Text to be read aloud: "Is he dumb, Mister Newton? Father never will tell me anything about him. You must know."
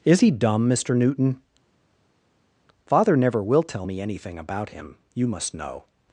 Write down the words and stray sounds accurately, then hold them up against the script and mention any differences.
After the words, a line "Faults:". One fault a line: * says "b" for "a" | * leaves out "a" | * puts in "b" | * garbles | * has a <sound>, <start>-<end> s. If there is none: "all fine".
"Is he dumb, Mister Newton? Father never will tell me anything about him. You must know."
Faults:
all fine